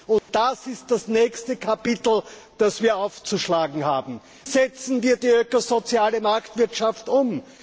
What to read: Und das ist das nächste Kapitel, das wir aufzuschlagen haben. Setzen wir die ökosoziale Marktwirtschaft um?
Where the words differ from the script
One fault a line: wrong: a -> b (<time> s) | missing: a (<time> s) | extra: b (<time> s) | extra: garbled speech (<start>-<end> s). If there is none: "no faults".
no faults